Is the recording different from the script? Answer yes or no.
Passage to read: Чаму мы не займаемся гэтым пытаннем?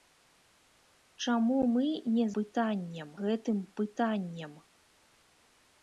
yes